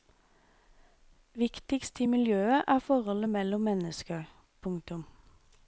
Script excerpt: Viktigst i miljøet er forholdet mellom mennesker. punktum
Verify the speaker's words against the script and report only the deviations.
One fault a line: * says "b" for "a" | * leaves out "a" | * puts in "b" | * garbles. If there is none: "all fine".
all fine